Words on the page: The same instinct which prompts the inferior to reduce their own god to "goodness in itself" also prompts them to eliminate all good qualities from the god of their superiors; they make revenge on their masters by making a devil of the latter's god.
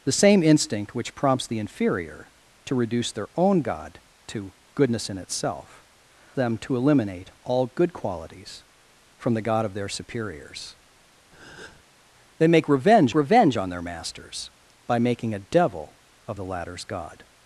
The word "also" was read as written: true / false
false